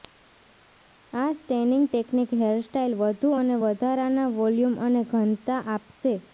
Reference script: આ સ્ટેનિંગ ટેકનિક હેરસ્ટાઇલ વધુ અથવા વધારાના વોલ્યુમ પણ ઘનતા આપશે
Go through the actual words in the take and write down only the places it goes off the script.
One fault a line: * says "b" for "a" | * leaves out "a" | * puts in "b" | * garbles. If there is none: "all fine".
* says "અને" for "અથવા"
* says "અને" for "પણ"